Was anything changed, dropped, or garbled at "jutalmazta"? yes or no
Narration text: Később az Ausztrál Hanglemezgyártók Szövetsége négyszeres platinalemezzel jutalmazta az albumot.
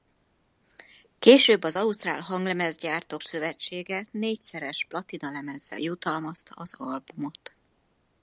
no